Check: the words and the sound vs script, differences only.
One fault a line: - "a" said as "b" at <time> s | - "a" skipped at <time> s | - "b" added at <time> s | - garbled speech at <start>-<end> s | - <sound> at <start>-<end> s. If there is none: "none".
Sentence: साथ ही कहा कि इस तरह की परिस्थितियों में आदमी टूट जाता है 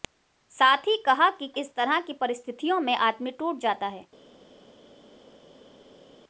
none